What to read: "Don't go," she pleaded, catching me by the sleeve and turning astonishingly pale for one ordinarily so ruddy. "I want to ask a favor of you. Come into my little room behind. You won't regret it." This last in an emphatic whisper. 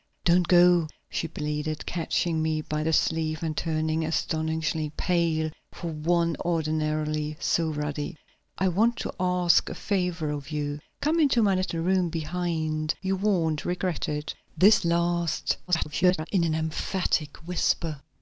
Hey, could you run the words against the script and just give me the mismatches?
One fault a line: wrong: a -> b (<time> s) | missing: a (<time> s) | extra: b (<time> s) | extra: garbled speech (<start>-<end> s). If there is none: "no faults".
extra: garbled speech (15.7-16.3 s)